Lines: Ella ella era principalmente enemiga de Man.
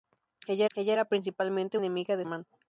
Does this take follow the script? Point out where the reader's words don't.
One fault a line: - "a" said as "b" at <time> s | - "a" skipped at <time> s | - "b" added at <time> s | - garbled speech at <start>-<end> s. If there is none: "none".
none